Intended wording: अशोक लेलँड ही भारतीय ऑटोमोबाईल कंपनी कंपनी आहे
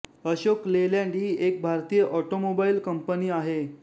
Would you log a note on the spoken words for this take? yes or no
yes